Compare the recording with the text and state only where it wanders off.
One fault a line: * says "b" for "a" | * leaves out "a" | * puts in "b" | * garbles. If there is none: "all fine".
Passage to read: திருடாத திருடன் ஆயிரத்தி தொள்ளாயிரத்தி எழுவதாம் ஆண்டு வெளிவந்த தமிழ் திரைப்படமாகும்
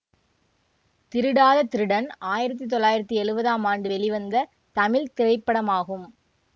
all fine